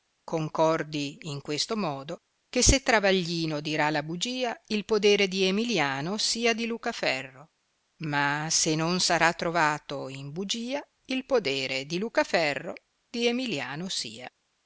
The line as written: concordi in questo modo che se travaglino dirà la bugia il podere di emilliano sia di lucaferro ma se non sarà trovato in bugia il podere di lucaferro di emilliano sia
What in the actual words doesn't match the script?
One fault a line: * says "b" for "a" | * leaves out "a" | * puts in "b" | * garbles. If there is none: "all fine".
all fine